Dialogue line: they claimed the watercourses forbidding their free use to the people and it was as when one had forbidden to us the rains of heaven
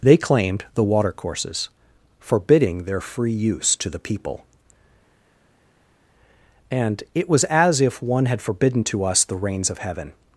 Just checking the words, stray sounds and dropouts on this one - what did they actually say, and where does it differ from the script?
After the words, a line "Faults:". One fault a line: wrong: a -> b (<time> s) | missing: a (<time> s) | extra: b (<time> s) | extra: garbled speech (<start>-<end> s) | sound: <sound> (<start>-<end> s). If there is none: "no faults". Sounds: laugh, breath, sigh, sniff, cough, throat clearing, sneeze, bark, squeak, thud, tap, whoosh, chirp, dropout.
they claimed the watercourses forbidding their free use to the people and it was as if one had forbidden to us the rains of heaven
Faults:
wrong: when -> if (7.8 s)